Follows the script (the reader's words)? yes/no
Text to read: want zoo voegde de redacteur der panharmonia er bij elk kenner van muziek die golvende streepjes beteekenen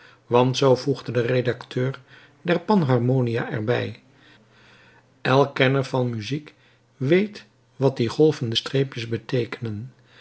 no